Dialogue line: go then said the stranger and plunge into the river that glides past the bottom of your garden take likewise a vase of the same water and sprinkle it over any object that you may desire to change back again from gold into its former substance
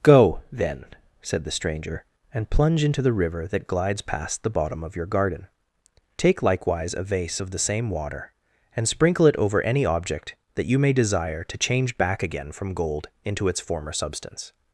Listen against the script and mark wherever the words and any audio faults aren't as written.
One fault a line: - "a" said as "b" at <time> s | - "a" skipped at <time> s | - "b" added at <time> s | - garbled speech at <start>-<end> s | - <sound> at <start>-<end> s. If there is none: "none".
none